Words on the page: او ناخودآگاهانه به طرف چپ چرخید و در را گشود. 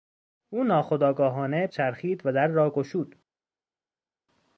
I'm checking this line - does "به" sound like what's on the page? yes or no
no